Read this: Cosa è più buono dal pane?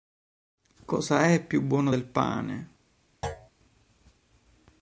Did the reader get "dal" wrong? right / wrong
wrong